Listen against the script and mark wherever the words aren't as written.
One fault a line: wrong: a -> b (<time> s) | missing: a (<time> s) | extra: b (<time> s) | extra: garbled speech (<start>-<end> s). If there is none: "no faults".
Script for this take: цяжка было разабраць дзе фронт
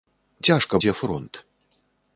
missing: было разабраць (0.8 s)